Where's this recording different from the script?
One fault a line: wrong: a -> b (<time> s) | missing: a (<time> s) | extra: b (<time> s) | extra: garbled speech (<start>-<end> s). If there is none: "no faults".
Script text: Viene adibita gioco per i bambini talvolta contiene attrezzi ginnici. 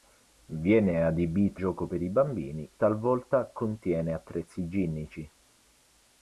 no faults